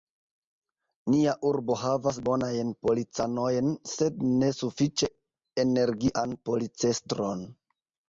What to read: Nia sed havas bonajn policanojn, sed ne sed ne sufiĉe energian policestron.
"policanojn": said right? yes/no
yes